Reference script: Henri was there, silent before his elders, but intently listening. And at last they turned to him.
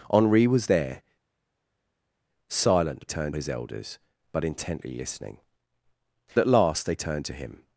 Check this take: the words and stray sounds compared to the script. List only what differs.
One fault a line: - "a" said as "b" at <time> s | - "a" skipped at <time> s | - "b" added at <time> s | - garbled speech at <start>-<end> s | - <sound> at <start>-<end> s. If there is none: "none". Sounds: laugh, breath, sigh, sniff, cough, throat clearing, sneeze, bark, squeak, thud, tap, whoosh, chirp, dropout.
- "before" said as "turned" at 3.1 s
- "And" skipped at 5.4 s